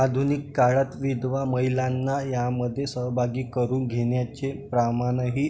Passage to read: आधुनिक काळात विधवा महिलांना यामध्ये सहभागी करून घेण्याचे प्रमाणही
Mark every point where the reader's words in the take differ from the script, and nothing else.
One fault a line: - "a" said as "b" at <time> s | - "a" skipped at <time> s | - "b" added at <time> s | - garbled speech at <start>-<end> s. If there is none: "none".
none